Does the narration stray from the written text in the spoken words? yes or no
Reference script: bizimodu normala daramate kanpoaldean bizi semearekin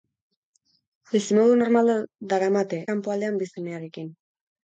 no